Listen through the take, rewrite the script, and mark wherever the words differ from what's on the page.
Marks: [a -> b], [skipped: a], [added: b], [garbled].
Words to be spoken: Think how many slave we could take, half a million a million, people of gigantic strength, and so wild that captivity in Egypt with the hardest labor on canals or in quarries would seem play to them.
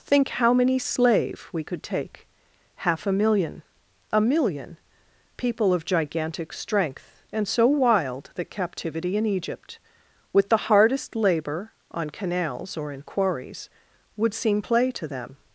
Think how many slave we could take, half a million a million, people of gigantic strength, and so wild that captivity in Egypt with the hardest labor on canals or in quarries would seem play to them.